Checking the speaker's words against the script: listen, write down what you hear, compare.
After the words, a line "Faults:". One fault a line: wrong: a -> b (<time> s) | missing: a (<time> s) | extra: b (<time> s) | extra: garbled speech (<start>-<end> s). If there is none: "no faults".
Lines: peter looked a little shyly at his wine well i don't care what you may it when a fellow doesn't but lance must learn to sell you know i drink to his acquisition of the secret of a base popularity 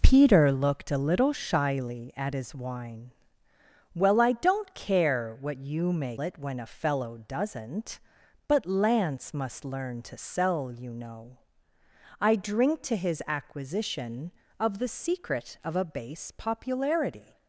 peter looked a little shyly at his wine well i don't care what you may it when a fellow doesn't but lance must learn to sell you know i drink to his acquisition of the secret of a base popularity
Faults:
no faults